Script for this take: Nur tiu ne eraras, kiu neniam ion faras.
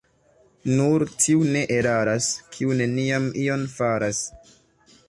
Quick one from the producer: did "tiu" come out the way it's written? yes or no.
yes